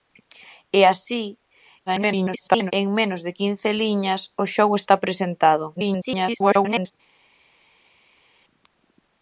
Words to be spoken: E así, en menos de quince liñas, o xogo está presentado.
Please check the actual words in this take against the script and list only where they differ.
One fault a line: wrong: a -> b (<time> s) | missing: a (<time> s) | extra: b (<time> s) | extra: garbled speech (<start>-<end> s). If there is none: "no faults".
extra: garbled speech (1.9-2.7 s)
extra: garbled speech (5.7-6.9 s)